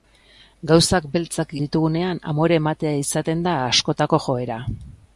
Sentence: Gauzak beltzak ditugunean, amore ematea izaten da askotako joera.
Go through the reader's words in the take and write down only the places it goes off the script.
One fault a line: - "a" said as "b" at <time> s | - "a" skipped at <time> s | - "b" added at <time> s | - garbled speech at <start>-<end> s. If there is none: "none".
none